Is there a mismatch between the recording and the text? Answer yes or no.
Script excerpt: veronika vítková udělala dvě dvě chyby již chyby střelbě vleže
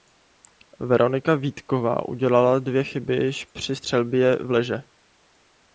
yes